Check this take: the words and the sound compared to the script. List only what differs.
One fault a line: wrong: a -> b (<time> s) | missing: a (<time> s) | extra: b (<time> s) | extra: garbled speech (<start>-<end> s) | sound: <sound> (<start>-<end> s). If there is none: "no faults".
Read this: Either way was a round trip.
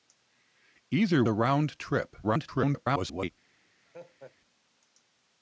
missing: way was (1.2 s)
extra: garbled speech (2.2-3.3 s)
sound: laugh (3.9-4.4 s)